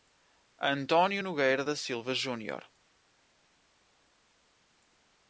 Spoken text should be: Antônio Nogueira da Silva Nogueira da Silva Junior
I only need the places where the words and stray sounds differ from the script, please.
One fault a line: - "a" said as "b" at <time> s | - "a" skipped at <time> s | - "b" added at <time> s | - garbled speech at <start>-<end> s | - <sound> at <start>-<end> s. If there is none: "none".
- "Nogueira da Silva" skipped at 2.1 s